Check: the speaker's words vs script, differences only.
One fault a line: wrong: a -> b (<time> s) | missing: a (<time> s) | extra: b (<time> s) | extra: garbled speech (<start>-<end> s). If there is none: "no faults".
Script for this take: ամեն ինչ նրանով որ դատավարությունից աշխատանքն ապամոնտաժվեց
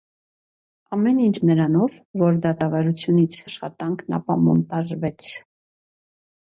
no faults